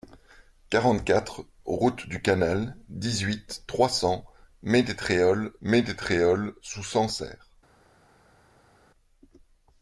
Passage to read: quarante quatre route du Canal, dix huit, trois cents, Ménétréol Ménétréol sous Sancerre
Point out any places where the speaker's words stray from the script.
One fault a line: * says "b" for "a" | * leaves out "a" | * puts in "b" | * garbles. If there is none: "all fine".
all fine